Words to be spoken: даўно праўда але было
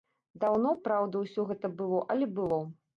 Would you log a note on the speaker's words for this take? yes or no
yes